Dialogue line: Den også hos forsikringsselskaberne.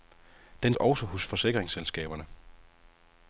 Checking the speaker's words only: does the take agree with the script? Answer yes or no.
yes